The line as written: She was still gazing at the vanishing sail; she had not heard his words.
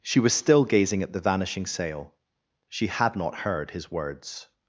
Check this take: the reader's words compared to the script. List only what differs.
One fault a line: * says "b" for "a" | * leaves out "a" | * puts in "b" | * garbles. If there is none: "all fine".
all fine